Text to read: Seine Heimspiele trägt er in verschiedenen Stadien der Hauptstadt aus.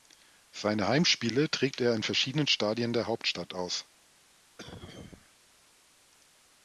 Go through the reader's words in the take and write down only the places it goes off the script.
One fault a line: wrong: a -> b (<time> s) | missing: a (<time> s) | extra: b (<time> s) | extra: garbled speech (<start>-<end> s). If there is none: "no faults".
no faults